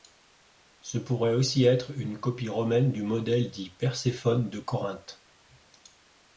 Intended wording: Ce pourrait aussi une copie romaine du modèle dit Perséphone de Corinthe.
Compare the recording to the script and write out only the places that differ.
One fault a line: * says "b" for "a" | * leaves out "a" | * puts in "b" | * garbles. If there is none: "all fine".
* puts in "être"